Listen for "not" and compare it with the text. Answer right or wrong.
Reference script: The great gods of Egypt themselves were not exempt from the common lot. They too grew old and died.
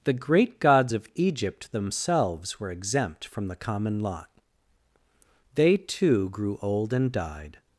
wrong